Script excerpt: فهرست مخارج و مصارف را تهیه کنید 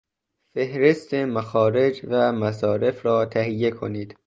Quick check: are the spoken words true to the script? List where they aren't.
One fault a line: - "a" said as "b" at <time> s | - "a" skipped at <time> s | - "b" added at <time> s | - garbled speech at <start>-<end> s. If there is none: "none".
none